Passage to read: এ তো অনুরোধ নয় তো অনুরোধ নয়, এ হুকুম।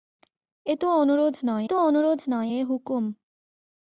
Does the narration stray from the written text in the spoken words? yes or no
no